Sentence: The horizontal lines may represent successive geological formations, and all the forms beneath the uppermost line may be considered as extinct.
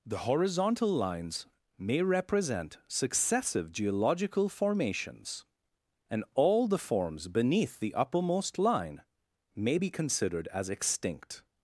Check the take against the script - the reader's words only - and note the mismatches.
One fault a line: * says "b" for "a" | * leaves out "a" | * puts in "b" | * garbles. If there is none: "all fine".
all fine